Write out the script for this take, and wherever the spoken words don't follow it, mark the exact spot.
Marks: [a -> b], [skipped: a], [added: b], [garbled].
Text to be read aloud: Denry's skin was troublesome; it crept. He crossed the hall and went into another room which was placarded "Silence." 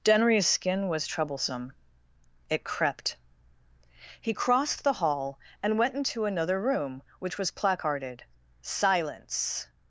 Denry's skin was troublesome; it crept. He crossed the hall and went into another room which was placarded "Silence."